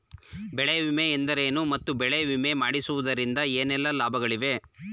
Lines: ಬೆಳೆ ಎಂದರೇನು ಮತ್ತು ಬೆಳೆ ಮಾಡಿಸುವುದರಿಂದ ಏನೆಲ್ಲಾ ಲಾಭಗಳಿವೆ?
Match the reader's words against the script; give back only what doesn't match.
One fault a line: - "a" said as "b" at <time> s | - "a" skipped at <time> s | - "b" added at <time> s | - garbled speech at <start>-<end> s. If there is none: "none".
- "ವಿಮೆ" added at 0.8 s
- "ವಿಮೆ" added at 2.2 s